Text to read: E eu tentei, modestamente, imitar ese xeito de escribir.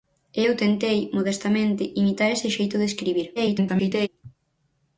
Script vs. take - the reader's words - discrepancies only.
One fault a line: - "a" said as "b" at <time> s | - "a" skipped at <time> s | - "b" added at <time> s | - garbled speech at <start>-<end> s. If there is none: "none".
- garbled speech at 3.4-4.1 s